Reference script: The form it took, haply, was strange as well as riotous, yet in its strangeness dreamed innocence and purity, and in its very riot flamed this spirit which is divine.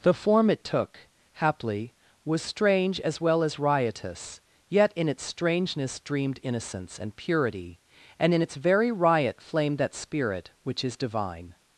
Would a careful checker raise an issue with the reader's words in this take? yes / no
yes